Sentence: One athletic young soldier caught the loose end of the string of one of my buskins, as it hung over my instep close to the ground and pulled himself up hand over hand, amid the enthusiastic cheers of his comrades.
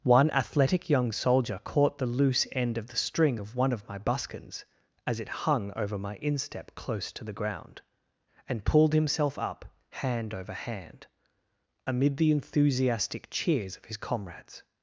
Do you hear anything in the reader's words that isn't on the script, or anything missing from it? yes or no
no